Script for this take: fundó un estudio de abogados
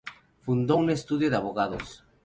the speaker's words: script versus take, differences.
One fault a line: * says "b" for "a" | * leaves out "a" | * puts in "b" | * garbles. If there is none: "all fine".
all fine